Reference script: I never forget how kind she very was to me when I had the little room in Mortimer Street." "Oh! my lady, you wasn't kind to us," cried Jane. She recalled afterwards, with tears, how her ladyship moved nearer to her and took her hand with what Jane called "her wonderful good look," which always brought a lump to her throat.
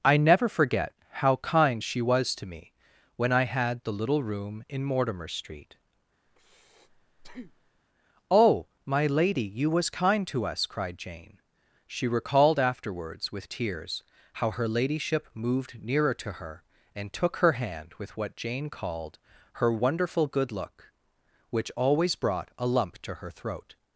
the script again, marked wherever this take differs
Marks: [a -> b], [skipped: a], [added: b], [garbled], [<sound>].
I never forget how kind she [skipped: very] was to me when I had the little room in Mortimer Street." [breath] "Oh! my lady, you [wasn't -> was] kind to us," cried Jane. She recalled afterwards, with tears, how her ladyship moved nearer to her and took her hand with what Jane called "her wonderful good look," which always brought a lump to her throat.